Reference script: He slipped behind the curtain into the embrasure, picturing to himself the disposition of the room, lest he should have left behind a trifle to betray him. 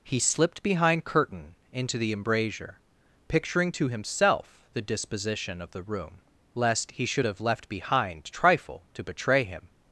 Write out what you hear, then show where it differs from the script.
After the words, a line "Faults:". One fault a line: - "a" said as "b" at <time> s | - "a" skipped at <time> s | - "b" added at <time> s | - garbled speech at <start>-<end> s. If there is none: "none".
He slipped behind curtain into the embrasure, picturing to himself the disposition of the room, lest he should have left behind trifle to betray him.
Faults:
- "the" skipped at 1.1 s
- "a" skipped at 8.2 s